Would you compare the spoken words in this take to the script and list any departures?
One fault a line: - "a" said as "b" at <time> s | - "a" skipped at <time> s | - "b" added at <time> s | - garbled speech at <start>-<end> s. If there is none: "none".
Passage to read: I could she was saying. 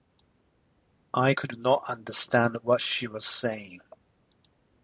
- "not understand what" added at 1.6 s